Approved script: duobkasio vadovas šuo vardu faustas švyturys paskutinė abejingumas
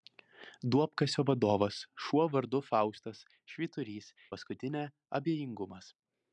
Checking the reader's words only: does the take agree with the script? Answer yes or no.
yes